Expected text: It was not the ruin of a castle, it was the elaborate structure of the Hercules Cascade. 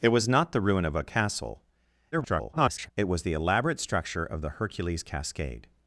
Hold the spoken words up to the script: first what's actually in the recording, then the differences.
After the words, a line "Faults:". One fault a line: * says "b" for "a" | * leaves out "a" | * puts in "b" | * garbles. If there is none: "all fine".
It was not the ruin of a castle, [garbled] it was the elaborate structure of the Hercules Cascade.
Faults:
* garbles